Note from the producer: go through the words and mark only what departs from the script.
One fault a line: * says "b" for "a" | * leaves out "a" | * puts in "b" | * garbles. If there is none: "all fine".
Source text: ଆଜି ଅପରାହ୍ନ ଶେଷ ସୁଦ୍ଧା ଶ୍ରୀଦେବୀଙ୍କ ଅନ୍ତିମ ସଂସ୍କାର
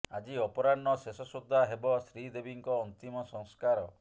* puts in "ହେବ"